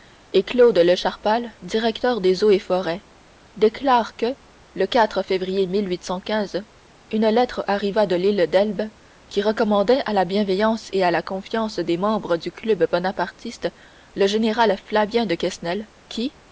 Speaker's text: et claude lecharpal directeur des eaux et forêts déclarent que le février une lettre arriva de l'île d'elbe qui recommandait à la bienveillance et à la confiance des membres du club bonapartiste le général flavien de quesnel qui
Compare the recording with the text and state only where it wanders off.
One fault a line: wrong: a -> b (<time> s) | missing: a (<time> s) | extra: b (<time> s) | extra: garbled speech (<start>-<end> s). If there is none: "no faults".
no faults